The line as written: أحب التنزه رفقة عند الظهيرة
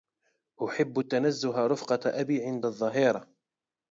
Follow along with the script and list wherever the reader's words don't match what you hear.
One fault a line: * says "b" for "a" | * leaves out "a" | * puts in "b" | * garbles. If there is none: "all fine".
* puts in "أبي"